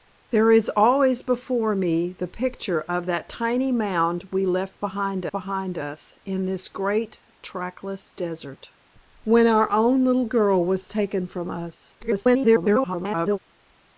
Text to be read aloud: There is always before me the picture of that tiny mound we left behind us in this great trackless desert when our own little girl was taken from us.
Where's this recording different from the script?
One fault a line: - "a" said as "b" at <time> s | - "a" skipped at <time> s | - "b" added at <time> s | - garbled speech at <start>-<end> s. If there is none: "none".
- "behind" added at 5.3 s
- garbled speech at 12.0-13.4 s